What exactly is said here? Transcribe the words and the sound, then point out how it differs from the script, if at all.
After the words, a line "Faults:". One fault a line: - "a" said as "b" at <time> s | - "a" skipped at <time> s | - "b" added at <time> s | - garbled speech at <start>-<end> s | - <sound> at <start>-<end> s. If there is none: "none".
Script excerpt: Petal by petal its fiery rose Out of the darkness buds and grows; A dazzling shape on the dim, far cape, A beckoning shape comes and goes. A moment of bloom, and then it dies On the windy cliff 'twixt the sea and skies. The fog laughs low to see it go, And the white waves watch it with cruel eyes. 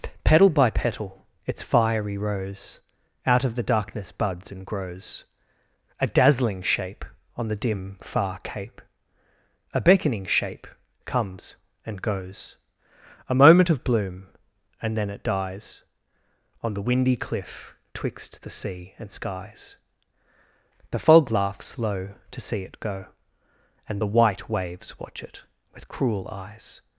Petal by petal its fiery rose Out of the darkness buds and grows; A dazzling shape on the dim, far cape, A beckoning shape comes and goes. A moment of bloom, and then it dies On the windy cliff 'twixt the sea and skies. The fog laughs low to see it go, And the white waves watch it with cruel eyes.
Faults:
none